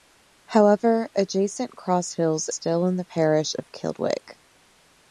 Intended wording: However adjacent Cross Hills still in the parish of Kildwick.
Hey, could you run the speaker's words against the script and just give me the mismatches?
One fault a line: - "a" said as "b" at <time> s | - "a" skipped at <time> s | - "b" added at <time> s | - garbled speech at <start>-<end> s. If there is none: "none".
none